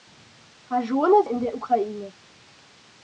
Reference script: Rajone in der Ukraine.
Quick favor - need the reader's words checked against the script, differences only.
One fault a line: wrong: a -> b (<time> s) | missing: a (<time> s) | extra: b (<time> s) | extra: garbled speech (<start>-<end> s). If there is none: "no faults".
no faults